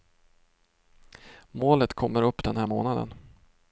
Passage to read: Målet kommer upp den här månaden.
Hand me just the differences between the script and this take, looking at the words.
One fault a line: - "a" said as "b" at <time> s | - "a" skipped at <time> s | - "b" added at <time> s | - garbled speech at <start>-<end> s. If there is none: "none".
none